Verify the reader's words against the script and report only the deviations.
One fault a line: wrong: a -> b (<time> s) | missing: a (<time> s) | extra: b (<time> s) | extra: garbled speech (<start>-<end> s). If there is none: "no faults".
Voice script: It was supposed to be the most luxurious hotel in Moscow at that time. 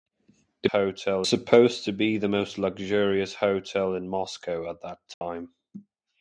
wrong: was -> hotel (0.7 s)